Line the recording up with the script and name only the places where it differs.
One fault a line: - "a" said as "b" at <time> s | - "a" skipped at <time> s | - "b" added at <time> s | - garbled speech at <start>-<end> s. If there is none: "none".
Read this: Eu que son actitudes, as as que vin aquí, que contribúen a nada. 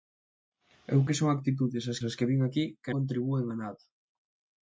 none